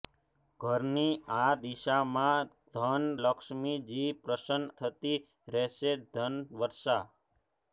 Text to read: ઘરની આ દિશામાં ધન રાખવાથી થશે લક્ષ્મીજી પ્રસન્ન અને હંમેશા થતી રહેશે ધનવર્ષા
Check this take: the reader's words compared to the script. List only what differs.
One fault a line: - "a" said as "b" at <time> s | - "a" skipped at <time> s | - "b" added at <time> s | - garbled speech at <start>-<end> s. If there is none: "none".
- "રાખવાથી થશે" skipped at 3.0 s
- "અને હંમેશા" skipped at 4.6 s